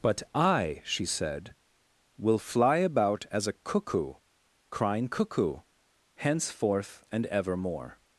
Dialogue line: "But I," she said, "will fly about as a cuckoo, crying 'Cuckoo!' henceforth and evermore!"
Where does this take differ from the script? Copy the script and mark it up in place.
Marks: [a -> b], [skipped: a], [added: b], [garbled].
"But I," she said, "will fly about as a cuckoo, crying 'Cuckoo!' henceforth and evermore!"